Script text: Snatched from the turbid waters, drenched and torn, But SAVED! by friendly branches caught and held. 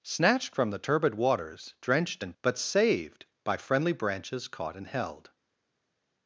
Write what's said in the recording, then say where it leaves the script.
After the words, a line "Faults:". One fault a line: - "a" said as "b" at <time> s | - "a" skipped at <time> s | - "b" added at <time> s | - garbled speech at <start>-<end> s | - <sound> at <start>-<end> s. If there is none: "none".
Snatched from the turbid waters, drenched and But SAVED! by friendly branches caught and held.
Faults:
- "torn" skipped at 2.3 s